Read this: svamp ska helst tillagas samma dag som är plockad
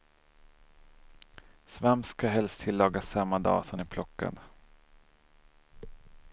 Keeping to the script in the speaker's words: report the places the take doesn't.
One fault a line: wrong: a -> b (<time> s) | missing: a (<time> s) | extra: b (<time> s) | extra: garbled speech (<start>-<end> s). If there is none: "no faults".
no faults